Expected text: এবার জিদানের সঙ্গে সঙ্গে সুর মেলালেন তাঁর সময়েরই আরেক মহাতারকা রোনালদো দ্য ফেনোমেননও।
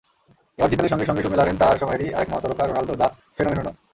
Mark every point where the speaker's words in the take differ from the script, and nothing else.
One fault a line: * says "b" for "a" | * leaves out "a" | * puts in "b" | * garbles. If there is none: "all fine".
all fine